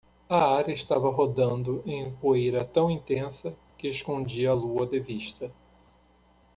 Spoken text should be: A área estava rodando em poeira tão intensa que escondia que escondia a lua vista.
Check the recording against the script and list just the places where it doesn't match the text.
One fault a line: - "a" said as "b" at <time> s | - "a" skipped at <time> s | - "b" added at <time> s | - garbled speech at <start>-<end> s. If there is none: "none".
- "que escondia" skipped at 4.5 s
- "de" added at 4.9 s